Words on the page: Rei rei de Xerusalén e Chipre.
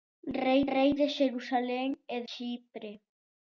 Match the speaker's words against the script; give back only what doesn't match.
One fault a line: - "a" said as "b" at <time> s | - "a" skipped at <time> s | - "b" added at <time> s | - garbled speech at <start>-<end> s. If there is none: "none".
none